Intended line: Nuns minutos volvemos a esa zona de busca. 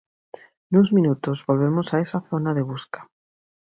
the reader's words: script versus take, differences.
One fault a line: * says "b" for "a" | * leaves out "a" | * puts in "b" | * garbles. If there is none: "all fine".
all fine